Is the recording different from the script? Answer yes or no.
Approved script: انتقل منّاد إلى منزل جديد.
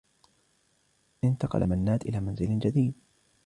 no